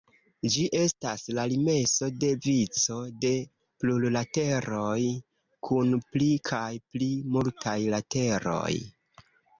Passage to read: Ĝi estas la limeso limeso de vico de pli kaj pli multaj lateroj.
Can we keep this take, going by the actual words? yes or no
no